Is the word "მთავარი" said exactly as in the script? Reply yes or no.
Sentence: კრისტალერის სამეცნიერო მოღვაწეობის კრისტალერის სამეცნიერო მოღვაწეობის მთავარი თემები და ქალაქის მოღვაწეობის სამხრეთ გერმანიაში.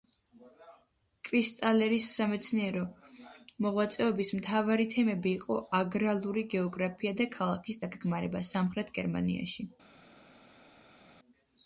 no